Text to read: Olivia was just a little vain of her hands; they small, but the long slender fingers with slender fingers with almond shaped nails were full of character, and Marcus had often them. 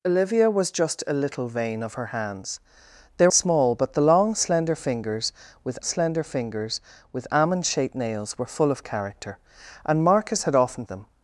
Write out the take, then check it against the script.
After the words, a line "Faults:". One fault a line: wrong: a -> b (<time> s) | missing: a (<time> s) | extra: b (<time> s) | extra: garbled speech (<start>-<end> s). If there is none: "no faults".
Olivia was just a little vain of her hands; they small, but the long slender fingers with slender fingers with almond shaped nails were full of character, and Marcus had often them.
Faults:
no faults